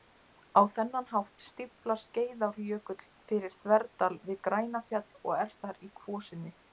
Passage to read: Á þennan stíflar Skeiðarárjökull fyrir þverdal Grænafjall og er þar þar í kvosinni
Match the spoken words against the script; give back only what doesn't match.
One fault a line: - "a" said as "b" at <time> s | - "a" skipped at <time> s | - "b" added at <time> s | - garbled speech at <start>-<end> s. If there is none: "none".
- "hátt" added at 1.1 s
- "við" added at 4.3 s
- "þar" skipped at 5.8 s